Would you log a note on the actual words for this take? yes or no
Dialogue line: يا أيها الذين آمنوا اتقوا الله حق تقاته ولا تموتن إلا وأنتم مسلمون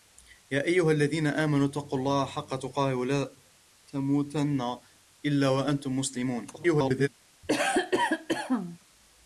yes